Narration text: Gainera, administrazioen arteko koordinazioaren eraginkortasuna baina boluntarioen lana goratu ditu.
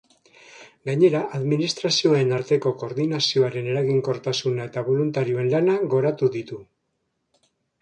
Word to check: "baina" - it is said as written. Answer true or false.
false